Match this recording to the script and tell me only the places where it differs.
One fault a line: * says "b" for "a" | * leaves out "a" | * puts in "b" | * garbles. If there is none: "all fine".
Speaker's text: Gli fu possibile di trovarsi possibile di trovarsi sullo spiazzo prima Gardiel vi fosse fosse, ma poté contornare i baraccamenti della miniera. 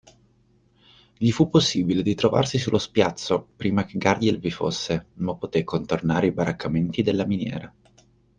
* leaves out "possibile di trovarsi"
* puts in "che"
* leaves out "fosse"